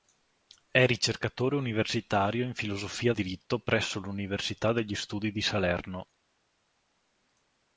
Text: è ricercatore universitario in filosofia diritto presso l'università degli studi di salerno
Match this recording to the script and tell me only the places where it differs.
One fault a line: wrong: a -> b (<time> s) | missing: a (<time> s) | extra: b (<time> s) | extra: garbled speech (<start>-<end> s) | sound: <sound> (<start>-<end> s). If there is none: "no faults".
no faults